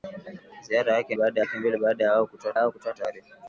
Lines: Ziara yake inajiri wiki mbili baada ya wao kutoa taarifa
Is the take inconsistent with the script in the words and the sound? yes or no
yes